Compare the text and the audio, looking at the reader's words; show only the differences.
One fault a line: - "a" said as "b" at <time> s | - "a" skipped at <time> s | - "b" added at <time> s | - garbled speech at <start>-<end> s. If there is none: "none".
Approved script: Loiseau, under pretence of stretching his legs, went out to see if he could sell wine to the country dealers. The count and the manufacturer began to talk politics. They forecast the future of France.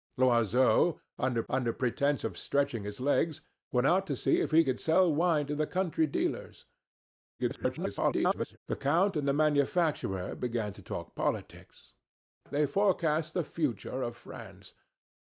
- "under" added at 1.5 s
- garbled speech at 7.4-8.6 s